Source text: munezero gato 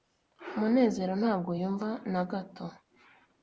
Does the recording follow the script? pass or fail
fail